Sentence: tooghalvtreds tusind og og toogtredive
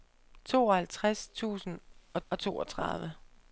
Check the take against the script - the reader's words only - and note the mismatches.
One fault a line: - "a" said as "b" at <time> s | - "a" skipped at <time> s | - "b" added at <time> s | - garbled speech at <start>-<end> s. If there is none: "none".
none